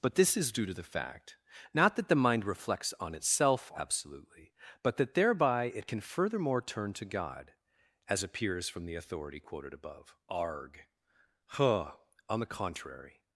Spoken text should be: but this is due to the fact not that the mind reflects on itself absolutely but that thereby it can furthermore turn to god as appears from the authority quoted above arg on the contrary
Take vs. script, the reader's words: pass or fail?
fail